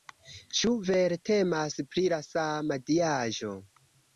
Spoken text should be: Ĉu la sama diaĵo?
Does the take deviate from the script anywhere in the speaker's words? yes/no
yes